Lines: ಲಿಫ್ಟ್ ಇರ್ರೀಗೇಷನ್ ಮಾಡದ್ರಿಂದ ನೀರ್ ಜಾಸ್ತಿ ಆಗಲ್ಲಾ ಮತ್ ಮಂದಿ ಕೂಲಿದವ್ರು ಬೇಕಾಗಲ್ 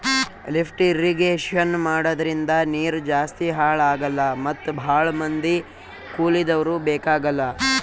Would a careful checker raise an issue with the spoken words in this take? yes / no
yes